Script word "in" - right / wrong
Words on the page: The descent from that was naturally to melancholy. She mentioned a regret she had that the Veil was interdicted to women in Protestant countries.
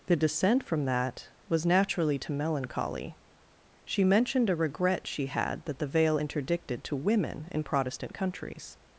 right